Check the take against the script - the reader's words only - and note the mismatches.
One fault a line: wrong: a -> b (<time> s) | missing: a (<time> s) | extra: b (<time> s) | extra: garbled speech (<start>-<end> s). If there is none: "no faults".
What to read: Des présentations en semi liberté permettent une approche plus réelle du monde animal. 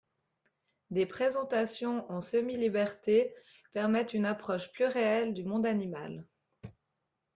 no faults